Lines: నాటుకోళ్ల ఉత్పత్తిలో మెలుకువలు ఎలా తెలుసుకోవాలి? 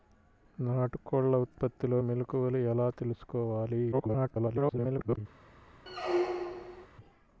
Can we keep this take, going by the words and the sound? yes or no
no